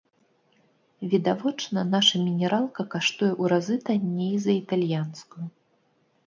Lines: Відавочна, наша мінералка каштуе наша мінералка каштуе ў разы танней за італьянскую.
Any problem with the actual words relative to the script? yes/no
yes